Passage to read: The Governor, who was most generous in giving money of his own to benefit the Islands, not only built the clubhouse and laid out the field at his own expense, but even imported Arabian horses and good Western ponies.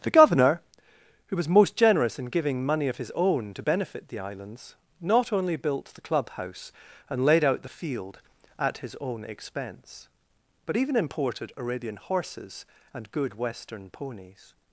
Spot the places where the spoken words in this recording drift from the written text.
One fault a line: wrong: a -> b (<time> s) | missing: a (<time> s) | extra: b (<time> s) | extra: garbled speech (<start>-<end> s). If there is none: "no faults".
no faults